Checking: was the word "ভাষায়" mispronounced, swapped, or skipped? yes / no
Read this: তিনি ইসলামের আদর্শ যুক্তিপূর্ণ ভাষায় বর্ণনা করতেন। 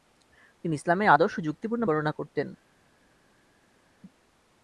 yes